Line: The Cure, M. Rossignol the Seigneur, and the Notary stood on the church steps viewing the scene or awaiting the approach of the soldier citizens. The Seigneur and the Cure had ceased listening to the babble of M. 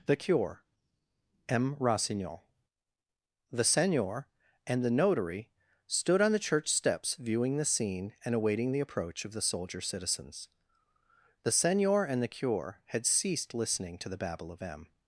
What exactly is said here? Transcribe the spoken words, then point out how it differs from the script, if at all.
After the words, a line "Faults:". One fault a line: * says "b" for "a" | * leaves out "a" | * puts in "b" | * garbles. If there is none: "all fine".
The Cure, M. Rossignol the Seigneur, and the Notary stood on the church steps viewing the scene and awaiting the approach of the soldier citizens. The Seigneur and the Cure had ceased listening to the babble of M.
Faults:
* says "and" for "or"